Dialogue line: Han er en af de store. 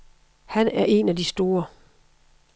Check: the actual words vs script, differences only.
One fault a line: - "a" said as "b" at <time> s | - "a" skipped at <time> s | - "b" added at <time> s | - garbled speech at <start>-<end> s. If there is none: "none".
none